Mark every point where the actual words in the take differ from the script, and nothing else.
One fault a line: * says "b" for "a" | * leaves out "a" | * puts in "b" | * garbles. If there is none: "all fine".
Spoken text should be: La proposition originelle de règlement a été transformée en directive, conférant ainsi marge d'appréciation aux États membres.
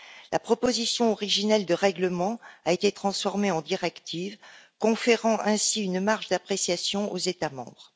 * puts in "une"